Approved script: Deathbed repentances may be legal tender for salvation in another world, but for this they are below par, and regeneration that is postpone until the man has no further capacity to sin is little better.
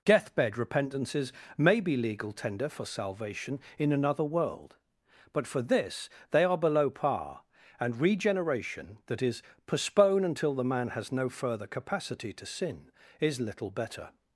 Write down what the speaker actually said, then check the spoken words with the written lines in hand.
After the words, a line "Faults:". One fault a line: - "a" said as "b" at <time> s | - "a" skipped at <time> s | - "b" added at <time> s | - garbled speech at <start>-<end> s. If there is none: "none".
Deathbed repentances may be legal tender for salvation in another world, but for this they are below par, and regeneration that is postpone until the man has no further capacity to sin is little better.
Faults:
none